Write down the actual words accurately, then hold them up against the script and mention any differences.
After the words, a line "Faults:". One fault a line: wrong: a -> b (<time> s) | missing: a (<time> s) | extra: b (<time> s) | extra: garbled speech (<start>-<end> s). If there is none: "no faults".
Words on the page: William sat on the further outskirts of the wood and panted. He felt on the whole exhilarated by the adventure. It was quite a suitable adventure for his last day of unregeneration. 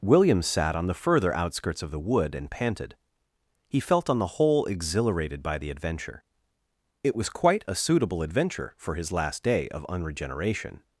William sat on the further outskirts of the wood and panted. He felt on the whole exhilarated by the adventure. It was quite a suitable adventure for his last day of unregeneration.
Faults:
no faults